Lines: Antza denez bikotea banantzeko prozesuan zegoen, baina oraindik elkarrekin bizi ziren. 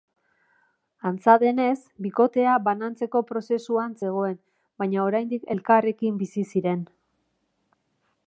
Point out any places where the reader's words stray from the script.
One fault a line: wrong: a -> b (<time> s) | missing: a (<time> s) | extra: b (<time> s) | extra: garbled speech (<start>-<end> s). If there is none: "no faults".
no faults